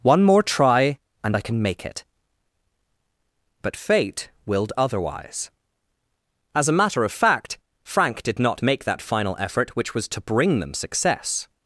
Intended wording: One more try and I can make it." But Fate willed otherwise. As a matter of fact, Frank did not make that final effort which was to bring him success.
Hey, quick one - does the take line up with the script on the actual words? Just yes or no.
no